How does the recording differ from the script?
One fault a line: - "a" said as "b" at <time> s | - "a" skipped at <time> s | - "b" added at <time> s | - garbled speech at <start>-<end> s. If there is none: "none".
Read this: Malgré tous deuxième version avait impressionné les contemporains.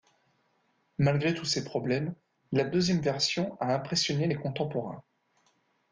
- "ces problèmes la" added at 1.4 s
- "avait" said as "a" at 3.6 s